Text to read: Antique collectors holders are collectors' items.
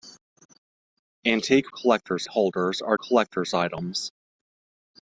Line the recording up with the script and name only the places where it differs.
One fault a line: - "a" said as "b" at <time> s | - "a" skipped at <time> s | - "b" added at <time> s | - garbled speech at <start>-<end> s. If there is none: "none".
none